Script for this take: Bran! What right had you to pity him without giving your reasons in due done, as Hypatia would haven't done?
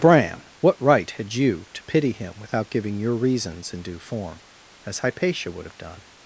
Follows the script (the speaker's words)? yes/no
no